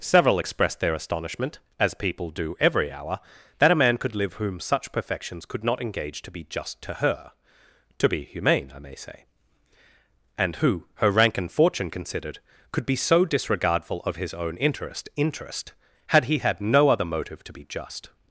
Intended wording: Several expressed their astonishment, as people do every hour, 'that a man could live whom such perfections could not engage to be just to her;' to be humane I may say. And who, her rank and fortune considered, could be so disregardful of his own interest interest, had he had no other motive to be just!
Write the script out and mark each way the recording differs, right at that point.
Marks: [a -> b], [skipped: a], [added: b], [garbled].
Several expressed their astonishment, as people do every hour, 'that a man could live whom such perfections could not engage to be just to her;' to be humane I may say. And who, her rank and fortune considered, could be so disregardful of his own interest interest, had he had no other motive to be just!